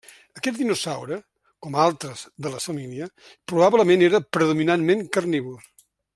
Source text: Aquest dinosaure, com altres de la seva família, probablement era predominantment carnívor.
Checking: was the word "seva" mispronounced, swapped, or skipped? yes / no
yes